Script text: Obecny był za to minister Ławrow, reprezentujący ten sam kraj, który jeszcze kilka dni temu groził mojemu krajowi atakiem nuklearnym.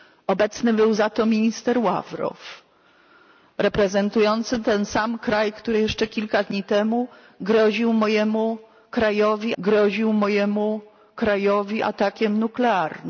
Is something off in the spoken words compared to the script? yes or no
yes